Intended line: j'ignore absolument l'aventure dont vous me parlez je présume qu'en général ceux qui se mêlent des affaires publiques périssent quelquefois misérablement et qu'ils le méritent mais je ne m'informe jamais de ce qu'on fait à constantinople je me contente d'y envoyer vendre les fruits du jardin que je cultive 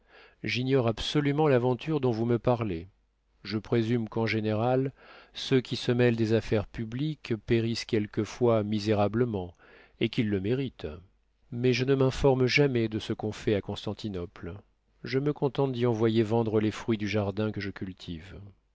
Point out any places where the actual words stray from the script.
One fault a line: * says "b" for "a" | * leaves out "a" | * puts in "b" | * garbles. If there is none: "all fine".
all fine